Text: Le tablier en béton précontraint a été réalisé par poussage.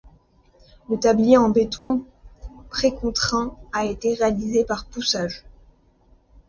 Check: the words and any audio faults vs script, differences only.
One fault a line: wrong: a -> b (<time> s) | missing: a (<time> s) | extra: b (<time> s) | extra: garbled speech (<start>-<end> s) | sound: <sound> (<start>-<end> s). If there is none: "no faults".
sound: dropout (1.8-1.9 s)